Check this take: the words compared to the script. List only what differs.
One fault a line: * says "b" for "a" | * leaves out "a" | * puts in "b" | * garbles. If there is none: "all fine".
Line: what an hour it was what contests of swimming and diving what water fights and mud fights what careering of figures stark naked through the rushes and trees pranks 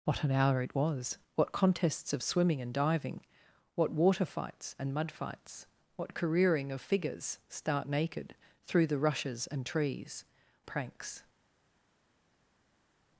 all fine